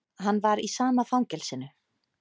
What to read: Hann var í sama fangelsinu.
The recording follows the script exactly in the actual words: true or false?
true